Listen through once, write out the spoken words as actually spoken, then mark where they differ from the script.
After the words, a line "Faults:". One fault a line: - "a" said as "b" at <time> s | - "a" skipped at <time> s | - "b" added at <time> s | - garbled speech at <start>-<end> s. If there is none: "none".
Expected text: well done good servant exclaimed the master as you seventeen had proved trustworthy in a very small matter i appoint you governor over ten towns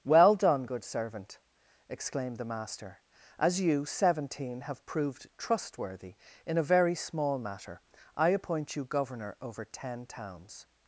well done good servant exclaimed the master as you seventeen have proved trustworthy in a very small matter i appoint you governor over ten towns
Faults:
- "had" said as "have" at 4.6 s